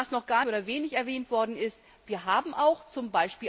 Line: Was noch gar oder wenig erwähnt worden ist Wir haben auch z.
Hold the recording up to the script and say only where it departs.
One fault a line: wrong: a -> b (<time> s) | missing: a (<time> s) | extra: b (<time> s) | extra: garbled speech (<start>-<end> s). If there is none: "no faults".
no faults